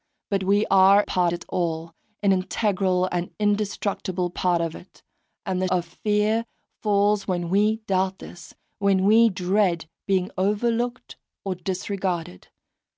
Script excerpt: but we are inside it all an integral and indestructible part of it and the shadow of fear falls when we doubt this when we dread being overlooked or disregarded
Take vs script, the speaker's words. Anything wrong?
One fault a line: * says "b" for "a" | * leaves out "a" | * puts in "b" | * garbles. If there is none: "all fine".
* says "part" for "inside"
* leaves out "shadow"